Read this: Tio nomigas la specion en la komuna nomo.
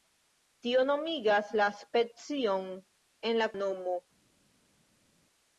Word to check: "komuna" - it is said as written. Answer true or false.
false